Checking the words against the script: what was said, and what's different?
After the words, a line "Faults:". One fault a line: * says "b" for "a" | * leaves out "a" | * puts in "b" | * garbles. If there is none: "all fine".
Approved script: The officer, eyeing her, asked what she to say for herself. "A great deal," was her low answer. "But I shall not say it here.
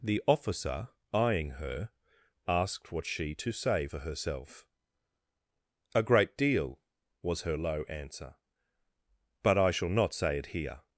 The officer, eyeing her, asked what she to say for herself. "A great deal," was her low answer. "But I shall not say it here.
Faults:
all fine